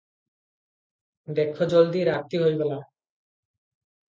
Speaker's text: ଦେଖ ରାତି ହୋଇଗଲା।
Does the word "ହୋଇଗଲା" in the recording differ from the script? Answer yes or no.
no